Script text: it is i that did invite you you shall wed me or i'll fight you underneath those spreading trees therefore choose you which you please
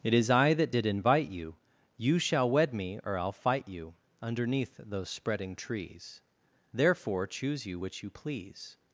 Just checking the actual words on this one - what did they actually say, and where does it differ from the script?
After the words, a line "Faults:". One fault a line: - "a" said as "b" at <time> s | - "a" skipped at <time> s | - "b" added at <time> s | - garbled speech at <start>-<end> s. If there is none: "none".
it is i that did invite you you shall wed me or i'll fight you underneath those spreading trees therefore choose you which you please
Faults:
none